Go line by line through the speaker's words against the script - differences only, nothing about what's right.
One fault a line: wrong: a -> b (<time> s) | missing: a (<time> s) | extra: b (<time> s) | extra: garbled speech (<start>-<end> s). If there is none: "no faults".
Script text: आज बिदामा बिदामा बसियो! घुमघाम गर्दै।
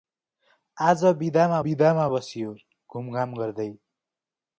no faults